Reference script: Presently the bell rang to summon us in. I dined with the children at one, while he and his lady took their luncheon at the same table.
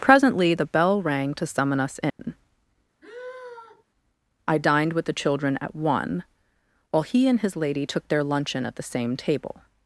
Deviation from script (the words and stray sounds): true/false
true